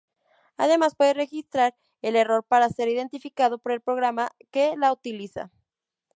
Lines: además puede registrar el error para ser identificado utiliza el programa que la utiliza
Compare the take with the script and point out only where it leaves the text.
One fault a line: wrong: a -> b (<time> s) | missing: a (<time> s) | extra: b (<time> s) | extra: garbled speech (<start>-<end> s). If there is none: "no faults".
wrong: utiliza -> por (3.6 s)